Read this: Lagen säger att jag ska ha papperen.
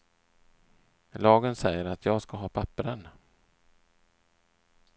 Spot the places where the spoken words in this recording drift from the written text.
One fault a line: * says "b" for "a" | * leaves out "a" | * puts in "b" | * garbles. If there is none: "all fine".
all fine